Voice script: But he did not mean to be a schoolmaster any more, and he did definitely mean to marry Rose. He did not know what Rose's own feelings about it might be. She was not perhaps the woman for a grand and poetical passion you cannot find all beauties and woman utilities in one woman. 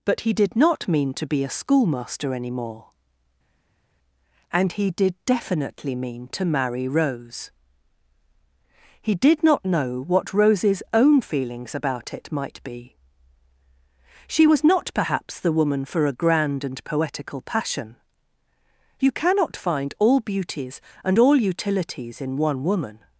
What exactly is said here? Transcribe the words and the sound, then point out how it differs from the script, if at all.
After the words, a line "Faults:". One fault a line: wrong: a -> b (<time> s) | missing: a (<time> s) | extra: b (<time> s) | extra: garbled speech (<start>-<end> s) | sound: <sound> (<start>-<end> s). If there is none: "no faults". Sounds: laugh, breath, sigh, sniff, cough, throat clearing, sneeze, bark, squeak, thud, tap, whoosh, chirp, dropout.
But he did not mean to be a schoolmaster any more, and he did definitely mean to marry Rose. He did not know what Rose's own feelings about it might be. She was not perhaps the woman for a grand and poetical passion you cannot find all beauties and all utilities in one woman.
Faults:
wrong: woman -> all (21.2 s)